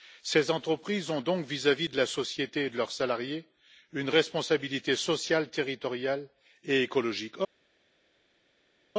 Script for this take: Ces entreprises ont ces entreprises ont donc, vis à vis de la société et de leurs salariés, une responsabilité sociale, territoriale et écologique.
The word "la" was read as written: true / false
true